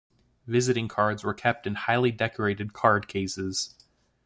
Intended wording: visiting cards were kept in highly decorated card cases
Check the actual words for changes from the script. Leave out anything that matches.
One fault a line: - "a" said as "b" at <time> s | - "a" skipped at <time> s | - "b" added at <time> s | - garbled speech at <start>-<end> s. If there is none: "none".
none